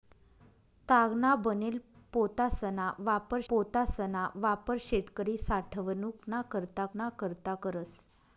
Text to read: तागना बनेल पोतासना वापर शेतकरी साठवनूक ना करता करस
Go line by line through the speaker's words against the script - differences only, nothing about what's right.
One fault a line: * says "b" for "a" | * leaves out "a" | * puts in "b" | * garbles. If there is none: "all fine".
* puts in "पोतासना वापर"
* puts in "ना करता"